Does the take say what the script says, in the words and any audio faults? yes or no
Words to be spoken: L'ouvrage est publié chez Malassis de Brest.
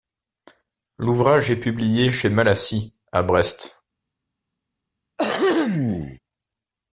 no